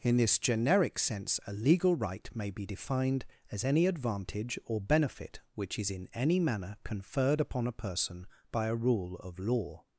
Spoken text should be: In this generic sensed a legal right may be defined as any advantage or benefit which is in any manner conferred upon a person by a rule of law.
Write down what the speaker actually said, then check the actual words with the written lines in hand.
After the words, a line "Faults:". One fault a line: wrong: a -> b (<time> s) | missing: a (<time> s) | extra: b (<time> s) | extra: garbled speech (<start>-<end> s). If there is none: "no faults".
In this generic sense a legal right may be defined as any advantage or benefit which is in any manner conferred upon a person by a rule of law.
Faults:
wrong: sensed -> sense (1.0 s)